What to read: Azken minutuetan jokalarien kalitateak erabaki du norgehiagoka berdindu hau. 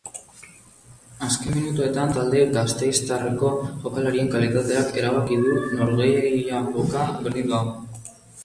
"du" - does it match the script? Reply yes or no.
yes